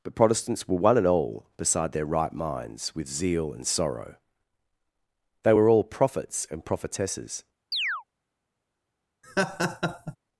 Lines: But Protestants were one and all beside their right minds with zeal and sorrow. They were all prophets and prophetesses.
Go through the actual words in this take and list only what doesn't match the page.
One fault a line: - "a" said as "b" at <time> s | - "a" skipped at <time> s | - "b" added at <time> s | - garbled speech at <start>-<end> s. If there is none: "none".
none